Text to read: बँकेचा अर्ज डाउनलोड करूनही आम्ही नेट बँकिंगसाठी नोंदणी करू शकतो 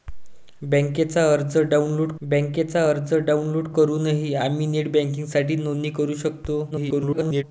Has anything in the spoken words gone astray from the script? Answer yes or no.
yes